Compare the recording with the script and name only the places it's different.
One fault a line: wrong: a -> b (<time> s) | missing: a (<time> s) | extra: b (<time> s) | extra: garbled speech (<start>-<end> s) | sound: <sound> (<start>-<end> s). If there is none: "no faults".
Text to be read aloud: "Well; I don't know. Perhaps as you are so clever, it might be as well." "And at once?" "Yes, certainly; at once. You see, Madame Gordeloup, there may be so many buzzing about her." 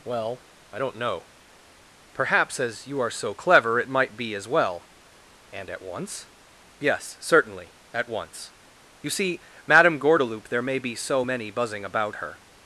no faults